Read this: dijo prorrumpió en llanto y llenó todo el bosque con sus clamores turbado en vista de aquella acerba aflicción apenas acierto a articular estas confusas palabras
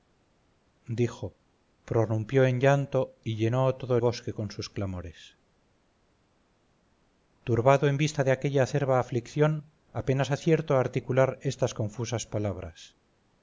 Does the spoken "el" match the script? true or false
false